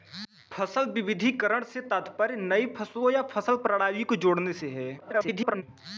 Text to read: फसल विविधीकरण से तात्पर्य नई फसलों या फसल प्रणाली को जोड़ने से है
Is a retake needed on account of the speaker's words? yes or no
yes